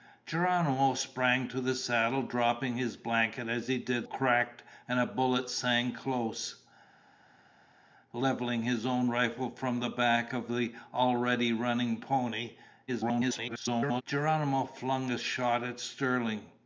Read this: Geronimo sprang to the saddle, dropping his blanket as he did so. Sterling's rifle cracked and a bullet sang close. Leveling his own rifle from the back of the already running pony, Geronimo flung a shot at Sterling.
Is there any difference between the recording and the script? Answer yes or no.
yes